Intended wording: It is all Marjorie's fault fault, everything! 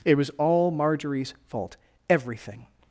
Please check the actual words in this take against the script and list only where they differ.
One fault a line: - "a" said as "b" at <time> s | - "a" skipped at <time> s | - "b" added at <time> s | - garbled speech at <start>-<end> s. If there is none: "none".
- "is" said as "was" at 0.1 s
- "fault" skipped at 1.8 s